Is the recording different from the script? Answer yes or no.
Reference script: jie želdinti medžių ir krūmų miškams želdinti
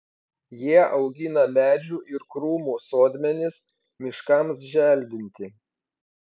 yes